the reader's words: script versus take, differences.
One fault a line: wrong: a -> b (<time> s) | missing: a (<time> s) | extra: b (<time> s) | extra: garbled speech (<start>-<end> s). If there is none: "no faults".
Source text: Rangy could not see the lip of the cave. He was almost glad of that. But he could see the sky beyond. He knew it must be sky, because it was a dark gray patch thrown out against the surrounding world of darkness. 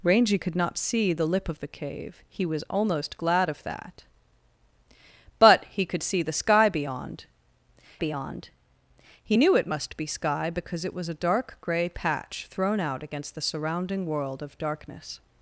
extra: beyond (8.0 s)